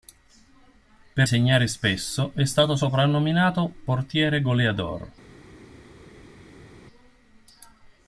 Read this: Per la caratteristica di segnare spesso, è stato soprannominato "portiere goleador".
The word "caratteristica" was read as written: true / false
false